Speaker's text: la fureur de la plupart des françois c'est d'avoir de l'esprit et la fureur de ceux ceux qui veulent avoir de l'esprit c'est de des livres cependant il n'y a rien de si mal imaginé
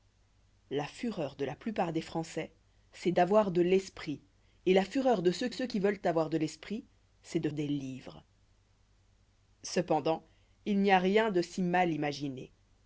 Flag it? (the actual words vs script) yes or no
no